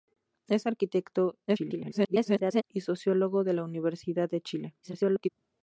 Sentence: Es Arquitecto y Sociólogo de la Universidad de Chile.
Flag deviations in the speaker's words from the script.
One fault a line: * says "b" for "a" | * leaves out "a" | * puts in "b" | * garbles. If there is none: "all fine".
* garbles
* garbles